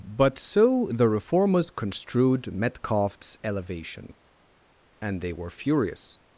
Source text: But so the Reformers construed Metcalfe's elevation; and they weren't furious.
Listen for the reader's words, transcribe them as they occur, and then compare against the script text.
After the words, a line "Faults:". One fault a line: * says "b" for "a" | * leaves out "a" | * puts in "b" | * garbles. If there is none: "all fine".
But so the Reformers construed Metcalfe's elevation; and they were furious.
Faults:
* says "were" for "weren't"